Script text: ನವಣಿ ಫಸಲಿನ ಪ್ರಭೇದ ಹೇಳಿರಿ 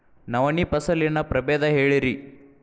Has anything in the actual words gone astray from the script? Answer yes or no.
no